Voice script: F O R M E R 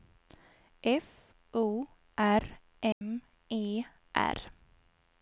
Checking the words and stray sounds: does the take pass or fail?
fail